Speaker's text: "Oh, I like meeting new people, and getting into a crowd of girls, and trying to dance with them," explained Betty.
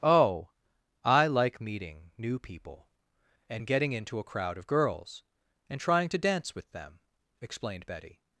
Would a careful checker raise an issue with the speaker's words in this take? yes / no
no